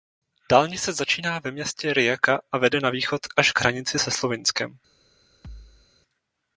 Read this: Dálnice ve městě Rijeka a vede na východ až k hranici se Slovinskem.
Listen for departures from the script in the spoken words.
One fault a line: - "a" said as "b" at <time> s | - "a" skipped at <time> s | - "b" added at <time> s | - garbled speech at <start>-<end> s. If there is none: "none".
- "začíná" added at 0.9 s